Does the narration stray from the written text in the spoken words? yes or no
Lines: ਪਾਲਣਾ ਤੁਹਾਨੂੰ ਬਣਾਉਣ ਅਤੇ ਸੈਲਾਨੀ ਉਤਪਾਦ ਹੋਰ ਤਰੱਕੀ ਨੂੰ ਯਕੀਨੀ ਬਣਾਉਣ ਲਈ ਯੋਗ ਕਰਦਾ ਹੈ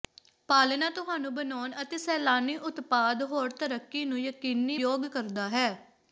yes